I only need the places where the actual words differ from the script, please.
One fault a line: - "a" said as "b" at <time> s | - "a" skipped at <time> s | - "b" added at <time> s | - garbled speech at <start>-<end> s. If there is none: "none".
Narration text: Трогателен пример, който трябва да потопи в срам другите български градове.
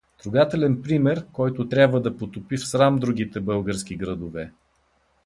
none